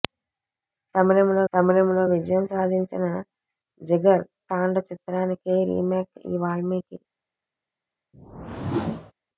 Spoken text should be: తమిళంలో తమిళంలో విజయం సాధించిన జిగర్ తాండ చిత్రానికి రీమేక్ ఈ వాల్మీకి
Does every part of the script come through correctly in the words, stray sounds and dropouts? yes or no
no